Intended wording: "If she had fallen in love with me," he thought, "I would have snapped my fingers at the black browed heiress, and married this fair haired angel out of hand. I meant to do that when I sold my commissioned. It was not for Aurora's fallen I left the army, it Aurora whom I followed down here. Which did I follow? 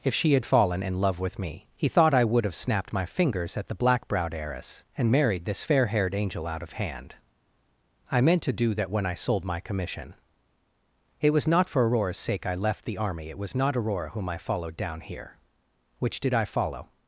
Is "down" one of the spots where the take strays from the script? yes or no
no